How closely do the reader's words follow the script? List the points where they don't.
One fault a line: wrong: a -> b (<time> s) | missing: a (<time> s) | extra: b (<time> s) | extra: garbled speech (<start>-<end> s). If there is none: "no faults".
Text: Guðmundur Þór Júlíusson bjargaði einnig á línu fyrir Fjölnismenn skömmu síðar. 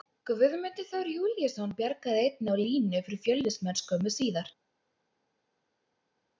no faults